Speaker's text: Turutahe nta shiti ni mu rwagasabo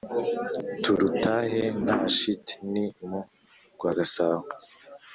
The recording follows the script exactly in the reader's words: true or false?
true